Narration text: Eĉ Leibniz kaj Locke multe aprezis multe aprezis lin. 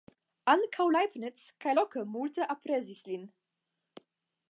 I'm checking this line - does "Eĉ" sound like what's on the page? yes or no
no